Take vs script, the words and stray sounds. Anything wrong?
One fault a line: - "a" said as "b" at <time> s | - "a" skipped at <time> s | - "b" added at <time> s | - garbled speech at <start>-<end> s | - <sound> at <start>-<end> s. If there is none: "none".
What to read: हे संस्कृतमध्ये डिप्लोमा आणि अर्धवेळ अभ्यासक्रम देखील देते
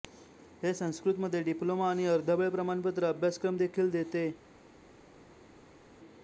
- "प्रमाणपत्र" added at 2.5 s